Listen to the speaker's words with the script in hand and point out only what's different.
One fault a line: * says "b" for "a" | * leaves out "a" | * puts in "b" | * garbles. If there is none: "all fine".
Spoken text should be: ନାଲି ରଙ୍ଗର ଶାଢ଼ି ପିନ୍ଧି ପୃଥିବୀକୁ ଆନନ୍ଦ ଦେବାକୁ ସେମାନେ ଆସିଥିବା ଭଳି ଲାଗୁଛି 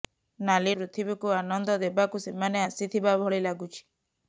* leaves out "ରଙ୍ଗର ଶାଢ଼ି ପିନ୍ଧି"